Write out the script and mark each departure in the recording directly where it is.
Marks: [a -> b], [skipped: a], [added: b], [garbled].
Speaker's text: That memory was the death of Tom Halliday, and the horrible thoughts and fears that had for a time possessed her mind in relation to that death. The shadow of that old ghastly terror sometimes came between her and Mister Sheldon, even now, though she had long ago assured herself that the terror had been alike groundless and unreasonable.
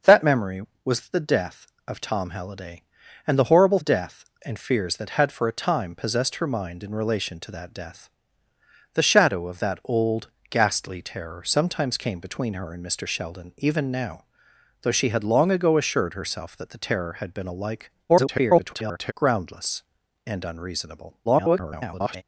That memory was the death of Tom Halliday, and the horrible [thoughts -> death] and fears that had for a time possessed her mind in relation to that death. The shadow of that old ghastly terror sometimes came between her and Mister Sheldon, even now, though she had long ago assured herself that the terror had been alike [garbled] groundless and unreasonable. [garbled]